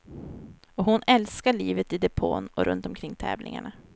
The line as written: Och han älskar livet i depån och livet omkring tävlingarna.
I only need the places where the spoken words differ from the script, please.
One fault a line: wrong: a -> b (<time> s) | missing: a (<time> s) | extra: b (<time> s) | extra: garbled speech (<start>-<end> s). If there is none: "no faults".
wrong: han -> hon (0.8 s)
wrong: livet -> runt (2.6 s)